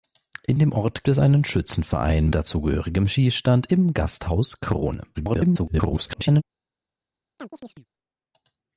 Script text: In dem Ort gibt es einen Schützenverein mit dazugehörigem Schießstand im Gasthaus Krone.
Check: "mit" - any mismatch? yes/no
yes